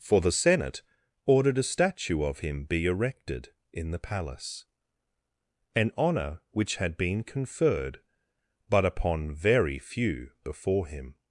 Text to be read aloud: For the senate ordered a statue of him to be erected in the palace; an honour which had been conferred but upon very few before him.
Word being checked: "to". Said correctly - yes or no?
no